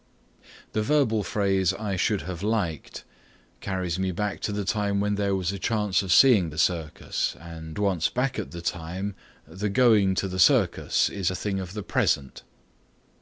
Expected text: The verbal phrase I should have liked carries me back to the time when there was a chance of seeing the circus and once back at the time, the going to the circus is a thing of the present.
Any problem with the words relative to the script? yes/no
no